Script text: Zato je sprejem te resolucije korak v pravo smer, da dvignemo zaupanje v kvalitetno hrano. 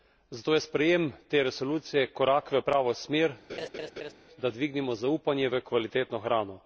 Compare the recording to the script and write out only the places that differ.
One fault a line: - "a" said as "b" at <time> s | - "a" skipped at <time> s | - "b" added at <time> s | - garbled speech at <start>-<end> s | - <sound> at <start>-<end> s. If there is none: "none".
- laugh at 3.5-4.1 s